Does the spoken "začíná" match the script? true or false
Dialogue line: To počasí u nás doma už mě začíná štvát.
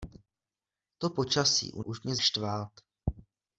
false